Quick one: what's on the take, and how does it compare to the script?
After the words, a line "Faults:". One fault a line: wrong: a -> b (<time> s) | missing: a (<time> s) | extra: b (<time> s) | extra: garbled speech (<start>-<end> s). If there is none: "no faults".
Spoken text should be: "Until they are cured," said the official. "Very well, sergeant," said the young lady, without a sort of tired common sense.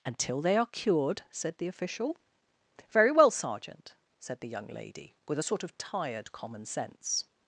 "Until they are cured," said the official. "Very well, sergeant," said the young lady, with a sort of tired common sense.
Faults:
wrong: without -> with (5.3 s)